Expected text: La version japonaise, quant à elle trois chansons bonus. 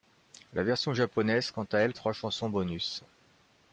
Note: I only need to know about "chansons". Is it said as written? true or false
true